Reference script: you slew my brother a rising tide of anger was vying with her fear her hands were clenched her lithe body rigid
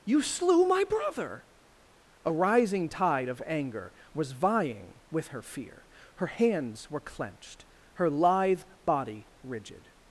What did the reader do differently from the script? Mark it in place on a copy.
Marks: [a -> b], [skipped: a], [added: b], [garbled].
you slew my brother a rising tide of anger was vying with her fear her hands were clenched her lithe body rigid